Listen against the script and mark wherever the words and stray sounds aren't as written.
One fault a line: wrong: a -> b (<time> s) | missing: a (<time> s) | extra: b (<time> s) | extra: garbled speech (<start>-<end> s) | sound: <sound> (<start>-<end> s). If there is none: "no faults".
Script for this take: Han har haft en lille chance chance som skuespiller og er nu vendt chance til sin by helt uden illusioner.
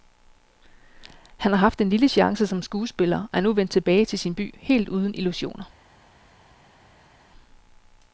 missing: chance (2.5 s)
wrong: chance -> tilbage (3.7 s)